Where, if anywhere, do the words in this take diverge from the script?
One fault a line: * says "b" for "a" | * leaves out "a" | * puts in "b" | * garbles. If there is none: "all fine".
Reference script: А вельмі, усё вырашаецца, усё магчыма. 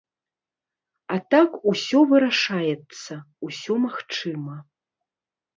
* says "так" for "вельмі"